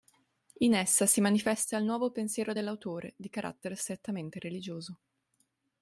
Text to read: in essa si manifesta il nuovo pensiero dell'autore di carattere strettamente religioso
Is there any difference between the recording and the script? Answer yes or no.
no